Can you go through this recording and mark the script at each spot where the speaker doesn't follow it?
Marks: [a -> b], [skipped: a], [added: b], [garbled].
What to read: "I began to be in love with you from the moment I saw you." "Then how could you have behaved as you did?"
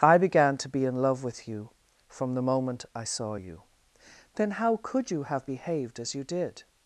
"I began to be in love with you from the moment I saw you." "Then how could you have behaved as you did?"